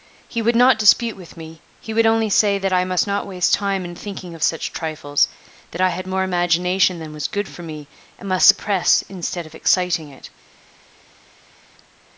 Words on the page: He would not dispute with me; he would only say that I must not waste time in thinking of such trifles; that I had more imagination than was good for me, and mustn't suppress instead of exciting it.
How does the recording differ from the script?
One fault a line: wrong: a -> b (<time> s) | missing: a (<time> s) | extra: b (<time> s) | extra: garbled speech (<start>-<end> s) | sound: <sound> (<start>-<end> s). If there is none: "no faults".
wrong: mustn't -> must (8.3 s)